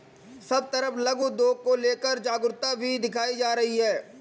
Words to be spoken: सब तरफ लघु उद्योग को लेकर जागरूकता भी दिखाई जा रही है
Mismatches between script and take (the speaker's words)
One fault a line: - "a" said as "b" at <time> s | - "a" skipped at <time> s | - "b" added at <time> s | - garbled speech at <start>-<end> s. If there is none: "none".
none